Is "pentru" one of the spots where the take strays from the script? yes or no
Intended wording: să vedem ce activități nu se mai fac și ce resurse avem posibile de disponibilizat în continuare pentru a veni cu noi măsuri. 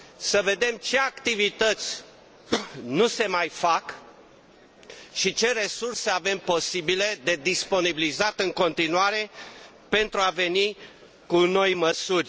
no